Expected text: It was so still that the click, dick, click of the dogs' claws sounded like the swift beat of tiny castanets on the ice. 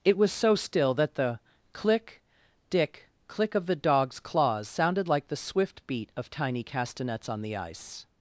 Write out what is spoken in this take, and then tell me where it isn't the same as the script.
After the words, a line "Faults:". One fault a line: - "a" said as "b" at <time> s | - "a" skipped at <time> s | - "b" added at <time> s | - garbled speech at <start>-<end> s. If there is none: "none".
It was so still that the click, dick, click of the dogs' claws sounded like the swift beat of tiny castanets on the ice.
Faults:
none